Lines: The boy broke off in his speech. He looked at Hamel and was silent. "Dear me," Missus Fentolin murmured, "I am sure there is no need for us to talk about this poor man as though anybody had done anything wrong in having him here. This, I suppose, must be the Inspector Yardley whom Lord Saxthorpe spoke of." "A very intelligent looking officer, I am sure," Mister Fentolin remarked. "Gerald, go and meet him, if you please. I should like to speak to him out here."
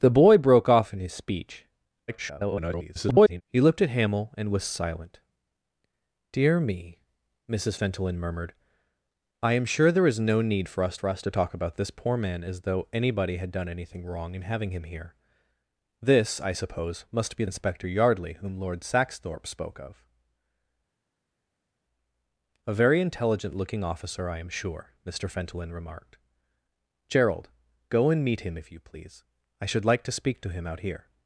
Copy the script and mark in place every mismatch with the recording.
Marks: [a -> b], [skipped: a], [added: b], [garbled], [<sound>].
The boy broke off in his speech. [garbled] He looked at Hamel and was silent. "Dear me," Missus Fentolin murmured, "I am sure there is no need for us [added: for us] to talk about this poor man as though anybody had done anything wrong in having him here. This, I suppose, must be [skipped: the] Inspector Yardley whom Lord Saxthorpe spoke of." "A very intelligent looking officer, I am sure," Mister Fentolin remarked. "Gerald, go and meet him, if you please. I should like to speak to him out here."